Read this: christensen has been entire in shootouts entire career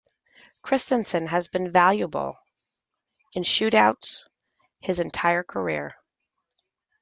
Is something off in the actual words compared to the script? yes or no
yes